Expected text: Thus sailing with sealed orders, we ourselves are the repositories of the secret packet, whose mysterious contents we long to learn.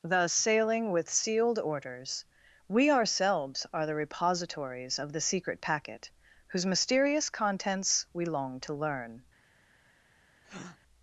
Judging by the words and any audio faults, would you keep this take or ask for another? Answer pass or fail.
fail